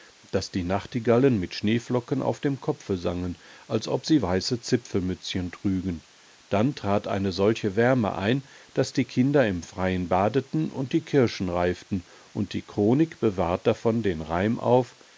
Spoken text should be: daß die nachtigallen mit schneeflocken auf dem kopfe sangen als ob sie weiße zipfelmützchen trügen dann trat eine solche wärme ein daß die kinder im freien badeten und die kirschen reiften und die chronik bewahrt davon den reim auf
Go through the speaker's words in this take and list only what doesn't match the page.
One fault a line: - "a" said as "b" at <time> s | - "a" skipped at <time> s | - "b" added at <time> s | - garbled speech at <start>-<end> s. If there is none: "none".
none